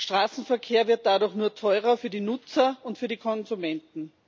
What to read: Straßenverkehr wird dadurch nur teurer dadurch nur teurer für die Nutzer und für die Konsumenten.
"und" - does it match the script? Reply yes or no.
yes